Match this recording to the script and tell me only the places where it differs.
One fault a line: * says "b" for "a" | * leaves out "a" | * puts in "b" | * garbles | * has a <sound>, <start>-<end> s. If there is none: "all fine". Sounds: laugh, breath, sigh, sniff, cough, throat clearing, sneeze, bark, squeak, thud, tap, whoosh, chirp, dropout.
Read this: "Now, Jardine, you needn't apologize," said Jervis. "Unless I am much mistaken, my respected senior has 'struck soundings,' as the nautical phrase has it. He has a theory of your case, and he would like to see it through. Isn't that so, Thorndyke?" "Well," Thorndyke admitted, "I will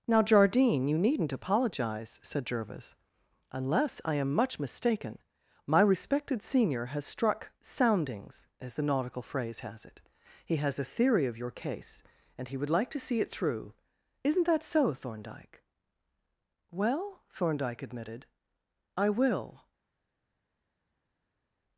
all fine